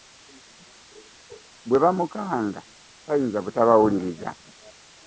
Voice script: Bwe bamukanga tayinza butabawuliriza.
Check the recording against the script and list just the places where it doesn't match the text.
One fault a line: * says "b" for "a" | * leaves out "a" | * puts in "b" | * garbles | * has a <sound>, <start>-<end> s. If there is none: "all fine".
all fine